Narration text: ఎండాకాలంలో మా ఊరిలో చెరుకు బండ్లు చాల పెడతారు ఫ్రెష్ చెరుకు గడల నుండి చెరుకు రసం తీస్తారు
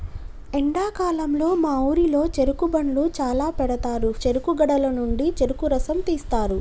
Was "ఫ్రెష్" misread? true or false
true